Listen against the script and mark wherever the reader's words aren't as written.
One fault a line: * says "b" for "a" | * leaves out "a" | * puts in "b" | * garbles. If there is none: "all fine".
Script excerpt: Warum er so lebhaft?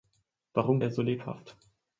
all fine